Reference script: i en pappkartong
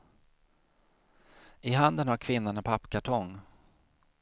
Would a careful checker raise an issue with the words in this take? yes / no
yes